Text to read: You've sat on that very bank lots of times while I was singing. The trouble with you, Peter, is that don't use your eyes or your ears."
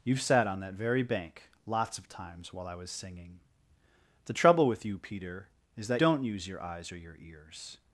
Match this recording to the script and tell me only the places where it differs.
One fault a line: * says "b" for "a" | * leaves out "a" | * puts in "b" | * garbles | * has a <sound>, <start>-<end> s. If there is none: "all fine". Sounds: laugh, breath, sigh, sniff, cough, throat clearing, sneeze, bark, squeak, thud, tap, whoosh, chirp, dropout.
all fine